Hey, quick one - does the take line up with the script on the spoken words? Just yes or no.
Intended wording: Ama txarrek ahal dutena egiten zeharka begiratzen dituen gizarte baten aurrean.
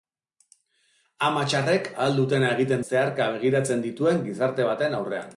yes